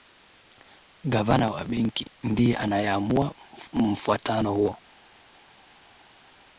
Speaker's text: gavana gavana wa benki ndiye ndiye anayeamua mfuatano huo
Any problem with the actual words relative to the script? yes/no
yes